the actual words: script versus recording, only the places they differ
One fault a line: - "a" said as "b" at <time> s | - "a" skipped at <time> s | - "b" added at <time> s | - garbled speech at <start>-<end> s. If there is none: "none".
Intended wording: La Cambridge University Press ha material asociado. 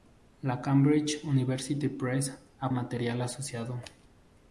none